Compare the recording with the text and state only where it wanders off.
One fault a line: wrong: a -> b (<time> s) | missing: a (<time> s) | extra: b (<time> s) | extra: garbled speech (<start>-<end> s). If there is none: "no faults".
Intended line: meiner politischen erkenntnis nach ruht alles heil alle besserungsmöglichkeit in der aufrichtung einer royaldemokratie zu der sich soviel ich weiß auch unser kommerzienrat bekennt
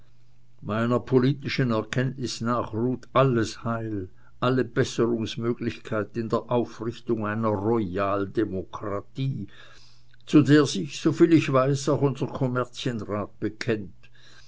no faults